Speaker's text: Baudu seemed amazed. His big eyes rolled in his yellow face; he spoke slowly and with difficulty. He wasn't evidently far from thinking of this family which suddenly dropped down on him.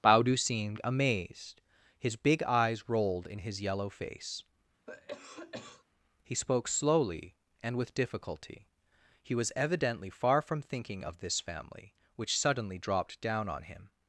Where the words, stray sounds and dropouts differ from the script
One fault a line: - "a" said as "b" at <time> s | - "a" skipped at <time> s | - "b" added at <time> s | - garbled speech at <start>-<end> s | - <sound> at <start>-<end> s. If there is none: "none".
- cough at 4.9-5.8 s
- "wasn't" said as "was" at 9.3 s